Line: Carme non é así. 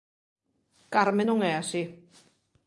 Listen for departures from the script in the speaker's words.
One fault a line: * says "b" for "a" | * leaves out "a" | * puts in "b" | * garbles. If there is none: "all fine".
all fine